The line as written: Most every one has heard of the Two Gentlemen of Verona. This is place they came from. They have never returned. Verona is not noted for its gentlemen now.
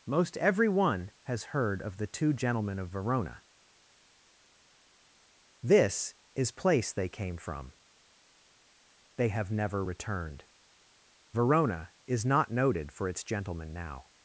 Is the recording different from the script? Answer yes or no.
no